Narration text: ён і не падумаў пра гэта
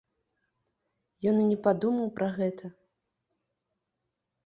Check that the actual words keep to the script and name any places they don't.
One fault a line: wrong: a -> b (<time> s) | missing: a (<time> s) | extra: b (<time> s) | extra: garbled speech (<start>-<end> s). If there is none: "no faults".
no faults